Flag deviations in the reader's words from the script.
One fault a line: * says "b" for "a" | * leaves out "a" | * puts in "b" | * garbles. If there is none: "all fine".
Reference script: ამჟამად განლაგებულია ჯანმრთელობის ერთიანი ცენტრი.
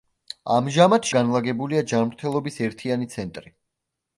all fine